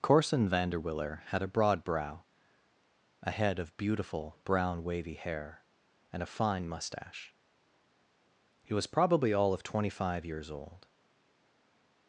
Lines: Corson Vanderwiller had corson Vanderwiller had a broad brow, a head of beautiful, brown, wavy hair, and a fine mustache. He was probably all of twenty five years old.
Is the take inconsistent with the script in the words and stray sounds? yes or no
yes